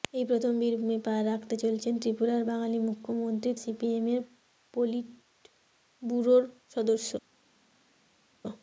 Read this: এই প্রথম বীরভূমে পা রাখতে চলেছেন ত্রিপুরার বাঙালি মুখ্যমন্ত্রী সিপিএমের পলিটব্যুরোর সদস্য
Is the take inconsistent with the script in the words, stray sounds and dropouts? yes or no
no